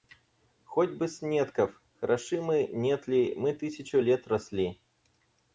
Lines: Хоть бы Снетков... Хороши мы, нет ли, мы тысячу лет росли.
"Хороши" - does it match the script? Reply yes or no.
yes